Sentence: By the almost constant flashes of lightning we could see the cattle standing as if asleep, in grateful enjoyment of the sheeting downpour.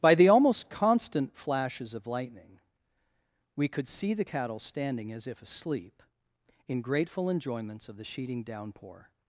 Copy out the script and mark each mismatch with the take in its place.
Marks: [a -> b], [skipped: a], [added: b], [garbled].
By the almost constant flashes of lightning we could see the cattle standing as if asleep, in grateful [enjoyment -> enjoyments] of the sheeting downpour.